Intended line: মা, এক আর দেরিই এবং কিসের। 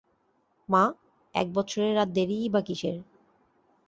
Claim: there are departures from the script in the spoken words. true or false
true